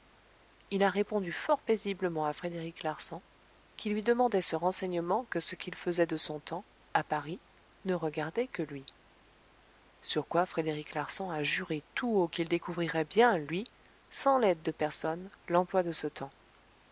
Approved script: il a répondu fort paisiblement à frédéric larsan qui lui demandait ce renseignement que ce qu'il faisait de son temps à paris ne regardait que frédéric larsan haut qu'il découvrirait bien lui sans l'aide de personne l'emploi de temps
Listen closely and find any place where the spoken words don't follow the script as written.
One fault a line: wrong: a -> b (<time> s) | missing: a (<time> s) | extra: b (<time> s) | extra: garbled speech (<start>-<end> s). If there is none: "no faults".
extra: lui sur quoi (8.6 s)
extra: a juré tout (11.3 s)
extra: ce (15.9 s)